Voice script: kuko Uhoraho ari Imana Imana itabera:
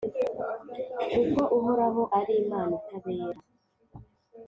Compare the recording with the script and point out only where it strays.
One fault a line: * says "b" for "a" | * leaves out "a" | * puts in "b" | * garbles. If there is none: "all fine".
* leaves out "Imana"